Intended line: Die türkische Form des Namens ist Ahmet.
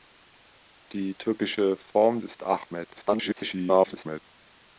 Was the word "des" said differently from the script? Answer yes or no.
yes